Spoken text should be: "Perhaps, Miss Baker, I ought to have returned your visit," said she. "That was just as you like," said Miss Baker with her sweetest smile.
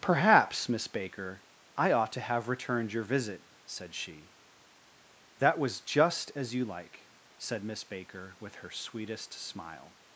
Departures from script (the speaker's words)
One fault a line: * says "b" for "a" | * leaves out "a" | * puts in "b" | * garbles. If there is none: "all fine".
all fine